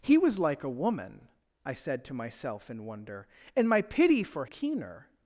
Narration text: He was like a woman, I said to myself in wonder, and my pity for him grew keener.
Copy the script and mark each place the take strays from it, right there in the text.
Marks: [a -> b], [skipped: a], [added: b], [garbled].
He was like a woman, I said to myself in wonder, and my pity for [skipped: him grew] keener.